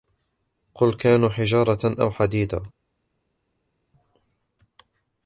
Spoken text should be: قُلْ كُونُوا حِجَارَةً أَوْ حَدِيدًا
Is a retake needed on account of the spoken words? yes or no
no